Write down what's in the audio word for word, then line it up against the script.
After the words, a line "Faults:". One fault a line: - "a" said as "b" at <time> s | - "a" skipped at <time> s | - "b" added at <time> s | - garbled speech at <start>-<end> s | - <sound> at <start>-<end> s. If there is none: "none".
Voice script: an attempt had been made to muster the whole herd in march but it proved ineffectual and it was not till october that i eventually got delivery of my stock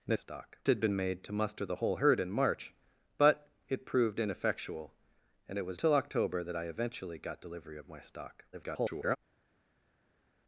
an stock had been made to muster the whole herd in march but it proved ineffectual and it was till october that i eventually got delivery of my stock [garbled]
Faults:
- "attempt" said as "stock" at 0.1 s
- "not" skipped at 5.8 s
- garbled speech at 8.5-9.2 s